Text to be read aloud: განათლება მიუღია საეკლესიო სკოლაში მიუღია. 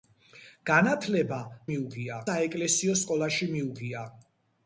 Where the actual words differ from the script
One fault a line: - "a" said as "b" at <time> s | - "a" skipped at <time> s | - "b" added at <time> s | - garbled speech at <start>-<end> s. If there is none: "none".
none